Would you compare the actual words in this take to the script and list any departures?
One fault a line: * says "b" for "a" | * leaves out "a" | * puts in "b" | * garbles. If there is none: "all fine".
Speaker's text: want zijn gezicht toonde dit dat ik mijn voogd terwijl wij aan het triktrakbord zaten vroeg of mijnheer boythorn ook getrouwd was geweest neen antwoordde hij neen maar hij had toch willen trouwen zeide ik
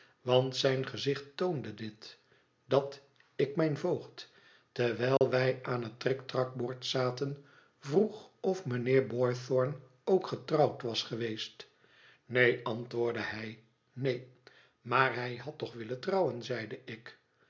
all fine